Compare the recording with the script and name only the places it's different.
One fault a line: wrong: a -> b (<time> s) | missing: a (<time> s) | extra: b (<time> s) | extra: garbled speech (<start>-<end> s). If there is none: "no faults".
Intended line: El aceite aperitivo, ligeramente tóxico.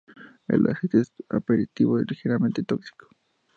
extra: es (1.0 s)